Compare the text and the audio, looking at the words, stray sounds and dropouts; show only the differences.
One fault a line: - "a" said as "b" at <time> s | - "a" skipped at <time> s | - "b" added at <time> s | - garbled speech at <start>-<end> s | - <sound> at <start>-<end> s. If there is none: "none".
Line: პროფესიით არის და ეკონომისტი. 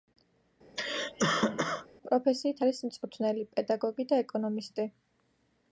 - cough at 0.8-1.9 s
- "მწვრთნელი პედაგოგი" added at 2.9 s